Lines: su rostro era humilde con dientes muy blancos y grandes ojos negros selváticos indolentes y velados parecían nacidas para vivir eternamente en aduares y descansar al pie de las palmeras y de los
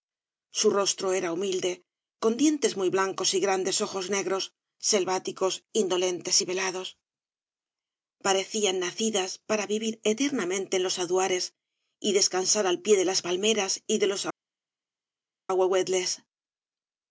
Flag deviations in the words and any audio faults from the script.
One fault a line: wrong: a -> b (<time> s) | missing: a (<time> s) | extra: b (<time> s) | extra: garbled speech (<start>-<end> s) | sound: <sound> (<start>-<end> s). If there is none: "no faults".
extra: los (10.8 s)